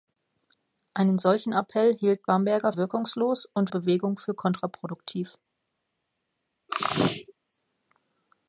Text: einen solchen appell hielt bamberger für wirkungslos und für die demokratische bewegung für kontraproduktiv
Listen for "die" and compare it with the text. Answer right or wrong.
wrong